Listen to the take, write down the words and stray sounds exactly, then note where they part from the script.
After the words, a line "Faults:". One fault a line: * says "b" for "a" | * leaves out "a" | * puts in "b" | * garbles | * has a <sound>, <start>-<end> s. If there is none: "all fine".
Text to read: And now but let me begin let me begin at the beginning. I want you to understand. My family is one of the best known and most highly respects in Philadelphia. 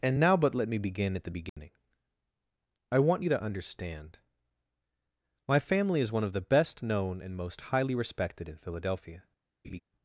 And now but let me begin at the beginning. I want you to understand. My family is one of the best known and most highly respected in Philadelphia.
Faults:
* leaves out "let me begin"
* has a dropout, 1.5-1.6 s
* says "respected" for "respects"
* has a laugh, 9.6-9.8 s